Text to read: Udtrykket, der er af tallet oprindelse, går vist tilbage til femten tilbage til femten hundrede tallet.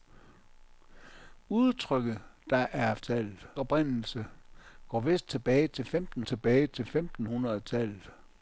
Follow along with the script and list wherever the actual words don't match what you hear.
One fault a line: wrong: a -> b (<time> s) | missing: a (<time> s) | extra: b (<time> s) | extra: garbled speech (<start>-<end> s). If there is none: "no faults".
no faults